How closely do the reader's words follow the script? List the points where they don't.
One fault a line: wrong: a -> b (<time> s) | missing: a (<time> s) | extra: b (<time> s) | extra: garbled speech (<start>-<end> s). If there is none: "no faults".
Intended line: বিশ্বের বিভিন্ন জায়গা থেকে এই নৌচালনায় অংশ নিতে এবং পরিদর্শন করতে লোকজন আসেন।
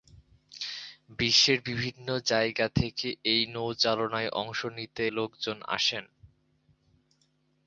missing: এবং পরিদর্শন করতে (5.0 s)